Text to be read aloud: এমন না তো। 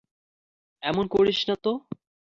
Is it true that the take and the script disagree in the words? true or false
true